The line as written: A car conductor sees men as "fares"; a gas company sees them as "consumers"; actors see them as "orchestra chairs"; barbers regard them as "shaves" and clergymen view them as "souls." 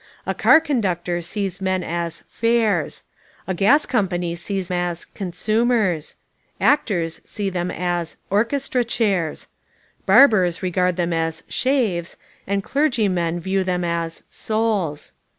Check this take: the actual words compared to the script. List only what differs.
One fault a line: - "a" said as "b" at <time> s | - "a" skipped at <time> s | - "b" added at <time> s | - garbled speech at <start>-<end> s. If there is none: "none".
- "them" skipped at 4.7 s